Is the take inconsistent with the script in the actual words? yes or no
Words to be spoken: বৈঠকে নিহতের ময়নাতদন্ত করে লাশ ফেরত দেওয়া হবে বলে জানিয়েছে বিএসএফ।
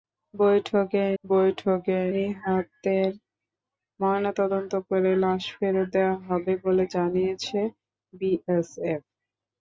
yes